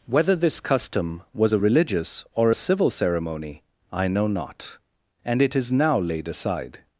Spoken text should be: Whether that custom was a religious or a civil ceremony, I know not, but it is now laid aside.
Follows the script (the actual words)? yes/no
no